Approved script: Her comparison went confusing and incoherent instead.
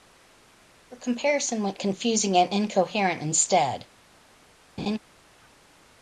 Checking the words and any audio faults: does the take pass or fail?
fail